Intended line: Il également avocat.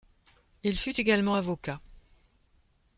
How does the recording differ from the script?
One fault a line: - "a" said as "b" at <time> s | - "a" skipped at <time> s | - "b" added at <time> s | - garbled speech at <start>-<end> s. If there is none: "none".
- "fut" added at 0.8 s